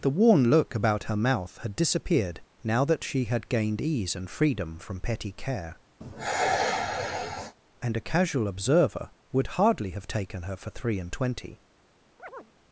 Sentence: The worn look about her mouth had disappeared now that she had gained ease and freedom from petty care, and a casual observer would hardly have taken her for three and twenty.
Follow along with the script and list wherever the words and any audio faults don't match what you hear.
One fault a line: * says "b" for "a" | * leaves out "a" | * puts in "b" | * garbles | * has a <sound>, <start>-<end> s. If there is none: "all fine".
* has a sigh, 6.0-7.6 s
* has a chirp, 12.2-12.5 s